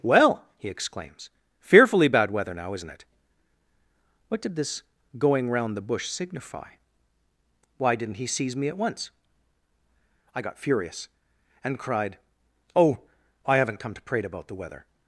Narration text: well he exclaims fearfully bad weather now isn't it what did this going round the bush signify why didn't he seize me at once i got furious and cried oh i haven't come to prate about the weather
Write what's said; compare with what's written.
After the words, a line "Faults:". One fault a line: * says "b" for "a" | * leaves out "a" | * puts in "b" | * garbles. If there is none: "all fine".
well he exclaims fearfully bad weather now isn't it what did this going round the bush signify why didn't he seize me at once i got furious and cried oh i haven't come to prate about the weather
Faults:
all fine